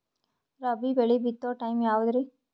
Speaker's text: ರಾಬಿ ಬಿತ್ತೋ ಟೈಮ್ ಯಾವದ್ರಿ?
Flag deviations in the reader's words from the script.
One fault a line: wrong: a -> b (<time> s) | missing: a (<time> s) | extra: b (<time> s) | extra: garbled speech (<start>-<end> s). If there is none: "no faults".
extra: ಬೆಳಿ (0.9 s)